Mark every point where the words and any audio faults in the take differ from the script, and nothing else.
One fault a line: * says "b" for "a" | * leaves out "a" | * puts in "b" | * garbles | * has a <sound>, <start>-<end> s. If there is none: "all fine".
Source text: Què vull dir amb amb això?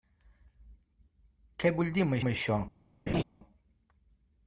* has a laugh, 3.1-3.2 s